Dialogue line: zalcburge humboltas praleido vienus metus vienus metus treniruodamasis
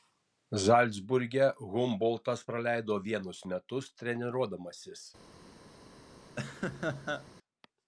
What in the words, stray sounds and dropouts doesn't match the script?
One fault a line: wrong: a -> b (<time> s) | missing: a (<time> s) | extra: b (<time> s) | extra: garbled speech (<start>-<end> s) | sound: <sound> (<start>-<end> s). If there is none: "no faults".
missing: vienus metus (3.9 s)
sound: laugh (6.4-7.3 s)